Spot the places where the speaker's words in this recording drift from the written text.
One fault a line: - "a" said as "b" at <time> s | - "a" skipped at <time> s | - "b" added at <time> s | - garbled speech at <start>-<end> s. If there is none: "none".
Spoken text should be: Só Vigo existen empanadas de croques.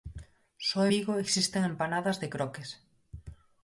none